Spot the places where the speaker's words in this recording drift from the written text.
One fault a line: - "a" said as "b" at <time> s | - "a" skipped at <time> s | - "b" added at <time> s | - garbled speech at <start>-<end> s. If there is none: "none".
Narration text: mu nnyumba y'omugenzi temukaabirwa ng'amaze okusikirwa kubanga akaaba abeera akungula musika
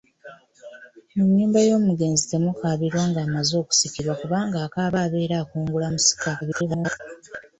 - garbled speech at 6.4-7.0 s